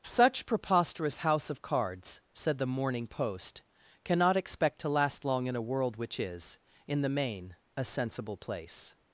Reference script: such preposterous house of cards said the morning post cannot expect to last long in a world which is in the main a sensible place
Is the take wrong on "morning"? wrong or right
right